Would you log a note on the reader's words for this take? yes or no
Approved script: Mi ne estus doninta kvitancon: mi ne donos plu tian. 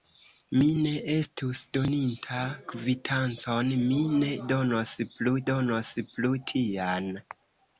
yes